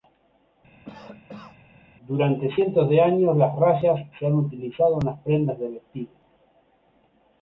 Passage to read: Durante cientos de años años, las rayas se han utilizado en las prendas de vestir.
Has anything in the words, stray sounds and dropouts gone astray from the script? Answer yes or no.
yes